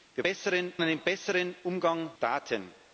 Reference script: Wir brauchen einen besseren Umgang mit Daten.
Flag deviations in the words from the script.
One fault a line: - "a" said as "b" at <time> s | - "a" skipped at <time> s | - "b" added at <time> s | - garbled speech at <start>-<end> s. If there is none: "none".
- "brauchen" said as "besseren" at 0.2 s
- "mit" skipped at 2.1 s